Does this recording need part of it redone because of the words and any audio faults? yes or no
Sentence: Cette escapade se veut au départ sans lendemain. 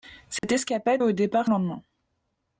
yes